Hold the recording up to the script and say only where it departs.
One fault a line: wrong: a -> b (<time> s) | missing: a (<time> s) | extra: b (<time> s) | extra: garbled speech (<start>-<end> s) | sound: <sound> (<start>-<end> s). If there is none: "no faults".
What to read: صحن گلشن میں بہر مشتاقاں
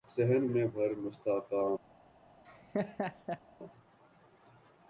missing: گلشن (0.5 s)
sound: laugh (2.4-3.4 s)